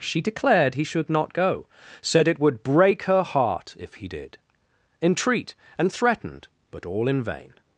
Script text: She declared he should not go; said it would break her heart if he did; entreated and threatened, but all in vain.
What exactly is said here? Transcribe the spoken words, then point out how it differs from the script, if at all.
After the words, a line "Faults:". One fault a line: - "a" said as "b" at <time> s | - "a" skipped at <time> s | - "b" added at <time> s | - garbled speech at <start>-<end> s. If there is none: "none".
She declared he should not go; said it would break her heart if he did; entreat and threatened, but all in vain.
Faults:
- "entreated" said as "entreat" at 5.0 s